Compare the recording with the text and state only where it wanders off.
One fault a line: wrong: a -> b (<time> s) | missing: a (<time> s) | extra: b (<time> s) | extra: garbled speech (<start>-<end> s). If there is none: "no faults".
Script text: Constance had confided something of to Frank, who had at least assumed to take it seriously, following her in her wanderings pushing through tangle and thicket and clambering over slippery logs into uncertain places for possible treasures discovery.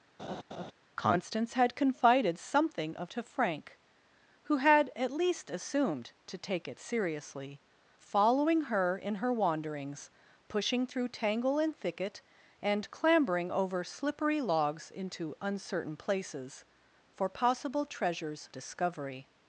no faults